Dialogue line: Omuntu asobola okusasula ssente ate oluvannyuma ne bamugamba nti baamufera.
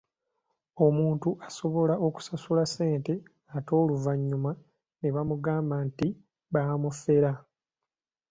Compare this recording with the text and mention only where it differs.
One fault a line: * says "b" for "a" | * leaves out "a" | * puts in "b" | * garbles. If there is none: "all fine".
all fine